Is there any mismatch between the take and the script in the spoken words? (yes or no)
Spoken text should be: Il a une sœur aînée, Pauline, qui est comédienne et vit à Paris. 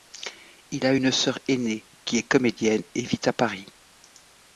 yes